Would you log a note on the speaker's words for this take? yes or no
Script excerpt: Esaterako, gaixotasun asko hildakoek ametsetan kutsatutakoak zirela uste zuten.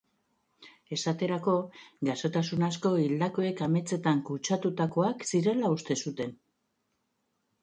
no